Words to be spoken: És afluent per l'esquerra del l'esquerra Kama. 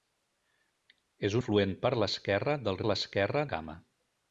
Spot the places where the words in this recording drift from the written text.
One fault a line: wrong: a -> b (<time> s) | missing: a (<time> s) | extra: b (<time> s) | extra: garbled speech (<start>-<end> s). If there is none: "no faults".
no faults